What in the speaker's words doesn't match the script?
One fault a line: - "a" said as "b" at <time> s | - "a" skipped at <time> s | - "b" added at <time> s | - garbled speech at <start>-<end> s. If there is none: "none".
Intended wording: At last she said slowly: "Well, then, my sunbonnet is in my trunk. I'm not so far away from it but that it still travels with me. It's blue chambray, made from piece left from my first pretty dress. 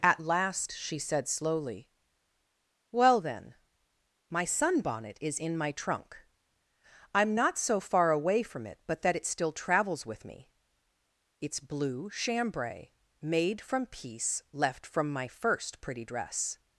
none